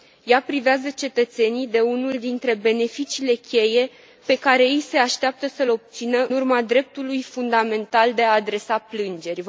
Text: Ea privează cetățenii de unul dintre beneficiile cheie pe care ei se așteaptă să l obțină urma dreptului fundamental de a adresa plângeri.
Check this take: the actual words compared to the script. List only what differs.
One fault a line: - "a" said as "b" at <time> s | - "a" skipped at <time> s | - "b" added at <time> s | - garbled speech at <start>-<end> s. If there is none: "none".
none